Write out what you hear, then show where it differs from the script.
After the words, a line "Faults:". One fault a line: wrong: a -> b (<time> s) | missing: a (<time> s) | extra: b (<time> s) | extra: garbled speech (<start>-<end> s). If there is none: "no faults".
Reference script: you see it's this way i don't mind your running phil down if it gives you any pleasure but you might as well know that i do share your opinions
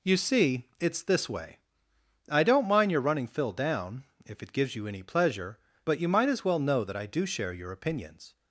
you see it's this way i don't mind your running phil down if it gives you any pleasure but you might as well know that i do share your opinions
Faults:
no faults